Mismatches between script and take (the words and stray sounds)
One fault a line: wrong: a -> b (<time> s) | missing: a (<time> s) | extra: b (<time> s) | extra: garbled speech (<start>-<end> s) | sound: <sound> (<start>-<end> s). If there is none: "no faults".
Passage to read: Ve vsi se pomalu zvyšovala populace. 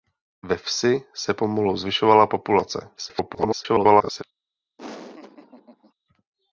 extra: garbled speech (3.0-4.2 s)
sound: laugh (4.8-5.9 s)